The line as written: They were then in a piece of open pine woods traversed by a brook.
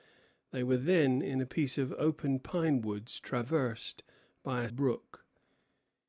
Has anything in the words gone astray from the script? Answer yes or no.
no